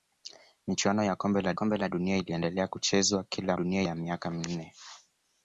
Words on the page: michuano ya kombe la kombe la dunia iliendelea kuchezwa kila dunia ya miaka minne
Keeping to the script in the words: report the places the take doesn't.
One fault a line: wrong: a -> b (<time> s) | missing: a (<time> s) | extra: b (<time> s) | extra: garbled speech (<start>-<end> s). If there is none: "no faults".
no faults